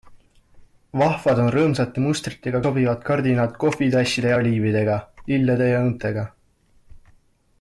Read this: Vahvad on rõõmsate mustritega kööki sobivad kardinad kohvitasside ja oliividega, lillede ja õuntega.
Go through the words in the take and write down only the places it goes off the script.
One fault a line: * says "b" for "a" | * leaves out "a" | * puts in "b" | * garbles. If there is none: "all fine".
* leaves out "kööki"